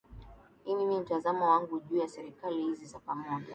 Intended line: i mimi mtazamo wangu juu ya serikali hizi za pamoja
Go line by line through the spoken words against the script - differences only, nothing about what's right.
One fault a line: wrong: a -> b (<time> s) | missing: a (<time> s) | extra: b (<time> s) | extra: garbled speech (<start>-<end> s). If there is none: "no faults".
no faults